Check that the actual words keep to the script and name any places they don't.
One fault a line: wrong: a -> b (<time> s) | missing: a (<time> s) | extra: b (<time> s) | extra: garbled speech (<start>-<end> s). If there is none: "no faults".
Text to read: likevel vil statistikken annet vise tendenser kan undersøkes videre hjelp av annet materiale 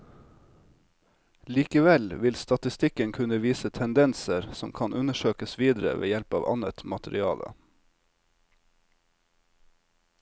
wrong: annet -> kunne (3.1 s)
extra: som (4.5 s)
extra: ved (6.0 s)